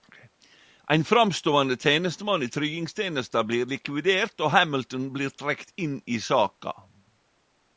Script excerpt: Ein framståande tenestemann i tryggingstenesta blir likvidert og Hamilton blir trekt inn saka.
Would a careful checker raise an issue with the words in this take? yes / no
yes